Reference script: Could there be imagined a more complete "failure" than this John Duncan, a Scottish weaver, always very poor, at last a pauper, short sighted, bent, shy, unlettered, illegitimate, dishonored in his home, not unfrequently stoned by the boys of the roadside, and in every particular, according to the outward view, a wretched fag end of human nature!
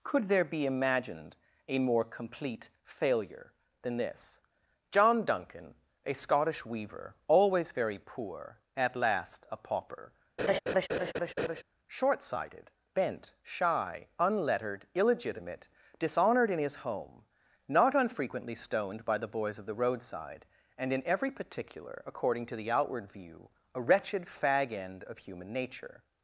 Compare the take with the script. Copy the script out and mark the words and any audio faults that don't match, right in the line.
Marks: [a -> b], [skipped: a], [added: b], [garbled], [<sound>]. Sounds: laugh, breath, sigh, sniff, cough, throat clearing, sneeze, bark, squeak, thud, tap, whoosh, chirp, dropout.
Could there be imagined a more complete "failure" than this John Duncan, a Scottish weaver, always very poor, at last a pauper, [laugh] short sighted, bent, shy, unlettered, illegitimate, dishonored in his home, not unfrequently stoned by the boys of the roadside, and in every particular, according to the outward view, a wretched fag end of human nature!